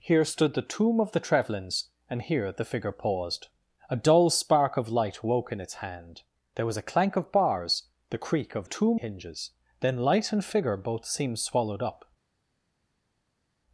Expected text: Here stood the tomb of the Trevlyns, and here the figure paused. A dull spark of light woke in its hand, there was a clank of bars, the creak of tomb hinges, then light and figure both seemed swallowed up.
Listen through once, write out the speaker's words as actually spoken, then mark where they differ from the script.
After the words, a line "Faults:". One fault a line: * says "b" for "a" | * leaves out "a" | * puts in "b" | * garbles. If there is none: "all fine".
Here stood the tomb of the Trevlyns, and here the figure paused. A dull spark of light woke in its hand, there was a clank of bars, the creak of tomb hinges, then light and figure both seemed swallowed up.
Faults:
all fine